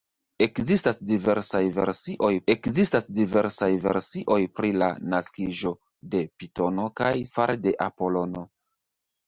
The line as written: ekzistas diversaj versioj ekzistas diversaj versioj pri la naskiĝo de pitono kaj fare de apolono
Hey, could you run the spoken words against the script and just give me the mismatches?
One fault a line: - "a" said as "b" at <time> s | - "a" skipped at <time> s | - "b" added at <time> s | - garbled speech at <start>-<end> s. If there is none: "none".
none